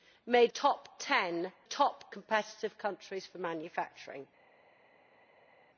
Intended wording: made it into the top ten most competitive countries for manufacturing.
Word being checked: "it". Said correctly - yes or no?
no